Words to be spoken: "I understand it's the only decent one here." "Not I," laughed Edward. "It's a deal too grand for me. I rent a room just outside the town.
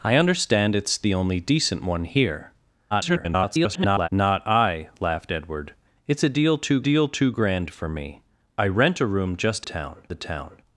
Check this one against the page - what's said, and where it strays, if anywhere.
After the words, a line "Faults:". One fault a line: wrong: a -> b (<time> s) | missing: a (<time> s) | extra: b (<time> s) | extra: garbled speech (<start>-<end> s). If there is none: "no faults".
"I understand it's the only decent one here." [garbled] "Not I," laughed Edward. "It's a deal too deal too grand for me. I rent a room just town the town.
Faults:
extra: garbled speech (2.9-4.1 s)
extra: deal too (6.8 s)
wrong: outside -> town (9.6 s)